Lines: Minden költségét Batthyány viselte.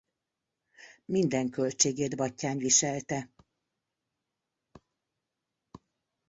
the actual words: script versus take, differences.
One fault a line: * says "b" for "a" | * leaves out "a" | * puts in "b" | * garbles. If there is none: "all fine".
all fine